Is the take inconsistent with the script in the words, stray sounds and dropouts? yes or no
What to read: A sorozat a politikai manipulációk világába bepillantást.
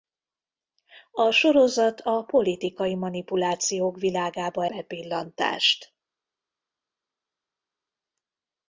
no